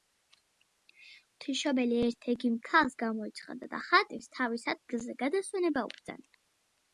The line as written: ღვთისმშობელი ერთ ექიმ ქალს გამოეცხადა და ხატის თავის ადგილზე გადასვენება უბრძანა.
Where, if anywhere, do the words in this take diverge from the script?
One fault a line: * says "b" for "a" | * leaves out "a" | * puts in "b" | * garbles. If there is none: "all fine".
all fine